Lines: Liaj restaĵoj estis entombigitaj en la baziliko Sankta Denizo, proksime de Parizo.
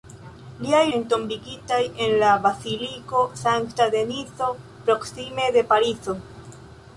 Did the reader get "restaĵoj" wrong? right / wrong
wrong